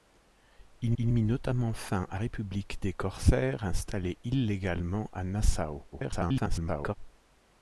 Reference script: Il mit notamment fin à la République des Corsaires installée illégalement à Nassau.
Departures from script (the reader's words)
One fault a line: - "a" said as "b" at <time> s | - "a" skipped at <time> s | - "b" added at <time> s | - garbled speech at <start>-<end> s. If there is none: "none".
- "il" added at 1.0 s
- "la" skipped at 2.2 s
- garbled speech at 5.9-6.9 s